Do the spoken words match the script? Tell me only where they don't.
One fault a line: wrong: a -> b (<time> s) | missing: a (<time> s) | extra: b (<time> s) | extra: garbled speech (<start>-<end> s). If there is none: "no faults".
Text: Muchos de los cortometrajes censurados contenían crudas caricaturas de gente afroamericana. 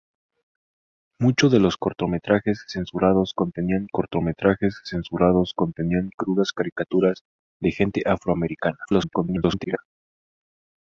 extra: cortometrajes censurados contenían (3.9 s)
extra: garbled speech (8.8-9.8 s)